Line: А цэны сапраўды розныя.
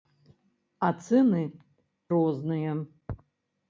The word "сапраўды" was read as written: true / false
false